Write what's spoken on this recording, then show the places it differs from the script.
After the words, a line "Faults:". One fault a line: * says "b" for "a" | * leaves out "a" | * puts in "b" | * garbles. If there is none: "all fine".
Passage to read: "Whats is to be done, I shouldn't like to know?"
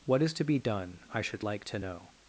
"What is to be done, I should like to know?"
Faults:
* says "What" for "Whats"
* says "should" for "shouldn't"